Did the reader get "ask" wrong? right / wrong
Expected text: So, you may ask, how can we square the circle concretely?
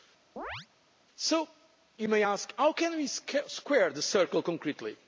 right